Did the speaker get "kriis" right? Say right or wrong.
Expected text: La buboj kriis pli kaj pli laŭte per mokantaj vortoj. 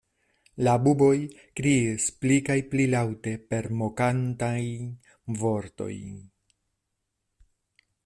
right